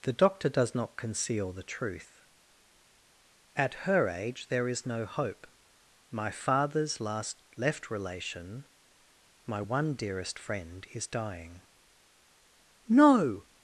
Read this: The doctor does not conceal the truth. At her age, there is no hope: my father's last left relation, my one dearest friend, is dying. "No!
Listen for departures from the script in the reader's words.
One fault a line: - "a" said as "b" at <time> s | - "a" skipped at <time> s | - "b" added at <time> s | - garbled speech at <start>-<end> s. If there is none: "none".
none